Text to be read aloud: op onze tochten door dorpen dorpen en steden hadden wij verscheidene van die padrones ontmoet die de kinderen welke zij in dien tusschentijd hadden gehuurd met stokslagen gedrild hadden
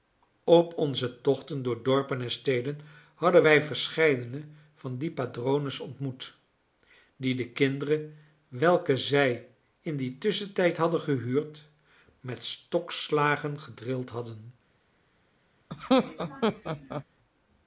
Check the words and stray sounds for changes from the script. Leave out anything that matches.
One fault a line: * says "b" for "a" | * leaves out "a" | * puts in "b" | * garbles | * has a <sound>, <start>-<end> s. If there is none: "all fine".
* leaves out "dorpen"
* has a laugh, 15.7-17.0 s